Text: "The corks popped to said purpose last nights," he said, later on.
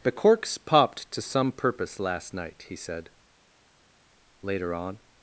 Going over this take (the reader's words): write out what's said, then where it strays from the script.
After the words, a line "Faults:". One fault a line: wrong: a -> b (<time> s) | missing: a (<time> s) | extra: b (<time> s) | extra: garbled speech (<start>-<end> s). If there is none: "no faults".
"The corks popped to some purpose last night," he said, later on.
Faults:
wrong: said -> some (1.2 s)
wrong: nights -> night (2.3 s)